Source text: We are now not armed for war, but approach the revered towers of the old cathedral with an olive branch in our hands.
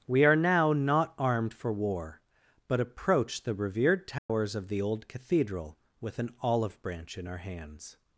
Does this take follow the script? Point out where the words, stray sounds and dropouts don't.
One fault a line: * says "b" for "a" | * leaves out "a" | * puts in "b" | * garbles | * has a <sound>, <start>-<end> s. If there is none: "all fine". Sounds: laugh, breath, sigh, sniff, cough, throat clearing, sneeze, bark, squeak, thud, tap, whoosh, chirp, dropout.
* has a dropout, 4.2-4.3 s